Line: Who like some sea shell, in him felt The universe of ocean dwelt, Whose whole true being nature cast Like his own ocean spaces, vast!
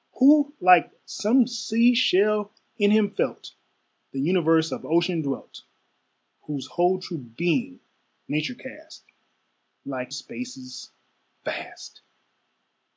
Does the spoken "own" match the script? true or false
false